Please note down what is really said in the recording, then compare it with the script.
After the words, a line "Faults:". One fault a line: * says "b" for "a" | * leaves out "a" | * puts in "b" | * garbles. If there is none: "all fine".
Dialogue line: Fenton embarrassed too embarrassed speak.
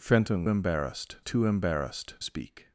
Fenton embarrassed too embarrassed speak.
Faults:
all fine